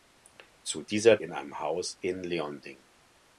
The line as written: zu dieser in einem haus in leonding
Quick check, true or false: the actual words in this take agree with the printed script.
true